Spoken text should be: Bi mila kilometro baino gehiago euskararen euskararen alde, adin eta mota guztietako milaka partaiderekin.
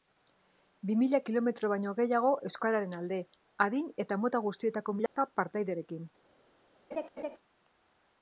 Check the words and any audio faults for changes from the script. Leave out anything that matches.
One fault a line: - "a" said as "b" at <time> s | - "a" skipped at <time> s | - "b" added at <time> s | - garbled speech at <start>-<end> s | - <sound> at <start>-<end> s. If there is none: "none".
- "euskararen" skipped at 3.0 s
- dropout at 5.1-5.2 s
- laugh at 6.9-7.4 s